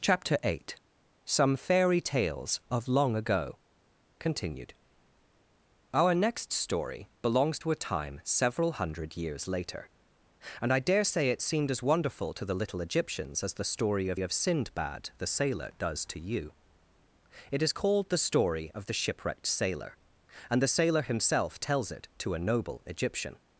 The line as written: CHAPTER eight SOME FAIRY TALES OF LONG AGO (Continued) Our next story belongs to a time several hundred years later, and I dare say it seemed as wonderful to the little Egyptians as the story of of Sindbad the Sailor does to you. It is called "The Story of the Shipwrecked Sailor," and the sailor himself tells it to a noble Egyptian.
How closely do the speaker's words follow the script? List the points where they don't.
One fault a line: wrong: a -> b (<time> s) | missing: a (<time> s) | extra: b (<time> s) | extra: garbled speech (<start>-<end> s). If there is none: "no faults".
no faults